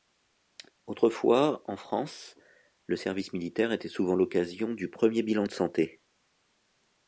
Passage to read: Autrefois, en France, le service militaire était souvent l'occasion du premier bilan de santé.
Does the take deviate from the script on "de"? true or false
false